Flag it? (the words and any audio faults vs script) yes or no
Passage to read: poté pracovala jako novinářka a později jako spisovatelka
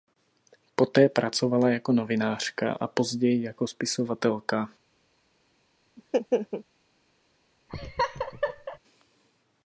yes